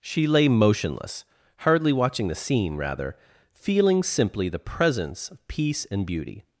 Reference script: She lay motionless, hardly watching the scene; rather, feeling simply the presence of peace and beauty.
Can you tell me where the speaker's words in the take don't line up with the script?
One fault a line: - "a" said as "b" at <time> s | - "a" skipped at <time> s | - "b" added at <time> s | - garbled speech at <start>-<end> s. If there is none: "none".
none